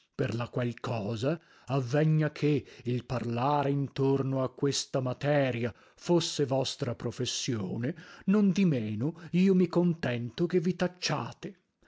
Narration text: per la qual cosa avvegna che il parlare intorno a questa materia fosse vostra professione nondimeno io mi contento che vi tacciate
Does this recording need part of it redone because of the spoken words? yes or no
no